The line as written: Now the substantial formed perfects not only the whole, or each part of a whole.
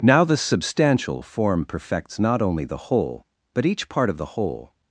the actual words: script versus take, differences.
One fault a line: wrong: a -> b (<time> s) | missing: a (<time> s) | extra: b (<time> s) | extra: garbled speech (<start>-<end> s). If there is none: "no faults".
wrong: formed -> form (1.2 s)
wrong: or -> but (3.5 s)
wrong: a -> the (4.2 s)